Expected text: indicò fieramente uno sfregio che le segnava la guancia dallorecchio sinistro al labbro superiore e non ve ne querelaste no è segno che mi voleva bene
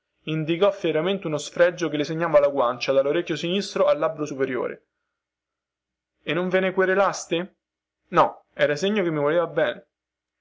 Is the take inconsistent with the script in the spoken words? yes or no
yes